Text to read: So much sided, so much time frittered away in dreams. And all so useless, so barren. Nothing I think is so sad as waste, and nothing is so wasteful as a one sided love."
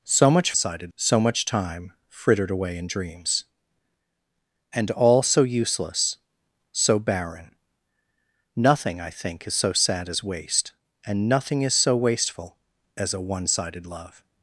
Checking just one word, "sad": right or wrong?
right